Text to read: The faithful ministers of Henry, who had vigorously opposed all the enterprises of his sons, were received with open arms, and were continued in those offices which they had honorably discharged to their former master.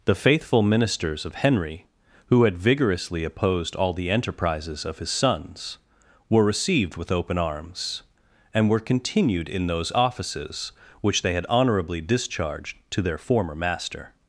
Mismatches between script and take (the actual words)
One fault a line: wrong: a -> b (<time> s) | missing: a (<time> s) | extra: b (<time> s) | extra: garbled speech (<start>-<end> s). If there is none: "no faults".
no faults